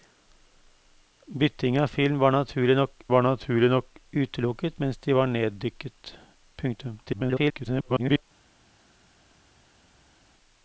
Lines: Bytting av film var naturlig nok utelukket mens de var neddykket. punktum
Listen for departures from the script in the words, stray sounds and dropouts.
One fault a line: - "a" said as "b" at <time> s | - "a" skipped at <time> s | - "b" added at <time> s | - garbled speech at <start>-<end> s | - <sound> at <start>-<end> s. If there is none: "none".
- "var naturlig nok" added at 3.1 s
- garbled speech at 7.1-8.2 s